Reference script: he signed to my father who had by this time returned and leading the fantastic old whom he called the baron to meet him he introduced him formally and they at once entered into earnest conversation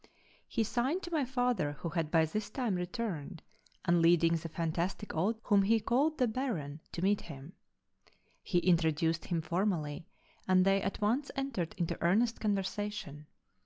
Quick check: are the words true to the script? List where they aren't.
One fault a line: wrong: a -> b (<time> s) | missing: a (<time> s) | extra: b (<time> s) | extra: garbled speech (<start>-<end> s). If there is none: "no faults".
no faults